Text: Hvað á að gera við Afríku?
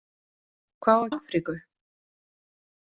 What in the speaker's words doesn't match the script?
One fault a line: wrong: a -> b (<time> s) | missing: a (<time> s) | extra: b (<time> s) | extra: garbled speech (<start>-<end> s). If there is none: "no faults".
missing: gera við (1.1 s)